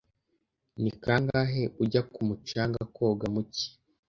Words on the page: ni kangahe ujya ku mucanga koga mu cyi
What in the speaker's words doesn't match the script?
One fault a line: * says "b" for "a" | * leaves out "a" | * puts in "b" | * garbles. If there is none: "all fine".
all fine